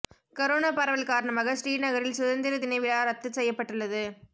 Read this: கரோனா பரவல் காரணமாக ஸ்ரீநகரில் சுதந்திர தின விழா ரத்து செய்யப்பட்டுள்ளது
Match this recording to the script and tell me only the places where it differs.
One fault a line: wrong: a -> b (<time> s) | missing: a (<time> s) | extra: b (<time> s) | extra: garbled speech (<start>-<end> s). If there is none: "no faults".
no faults